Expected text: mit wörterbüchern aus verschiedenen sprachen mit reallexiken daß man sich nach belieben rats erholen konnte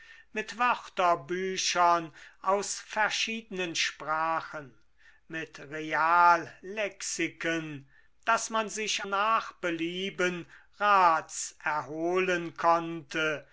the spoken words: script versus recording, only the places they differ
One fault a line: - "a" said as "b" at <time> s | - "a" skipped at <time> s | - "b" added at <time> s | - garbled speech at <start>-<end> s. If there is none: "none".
none